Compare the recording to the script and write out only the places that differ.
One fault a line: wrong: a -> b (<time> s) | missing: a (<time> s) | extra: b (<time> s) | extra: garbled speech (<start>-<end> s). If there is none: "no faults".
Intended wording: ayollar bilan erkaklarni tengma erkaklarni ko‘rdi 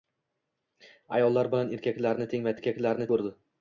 no faults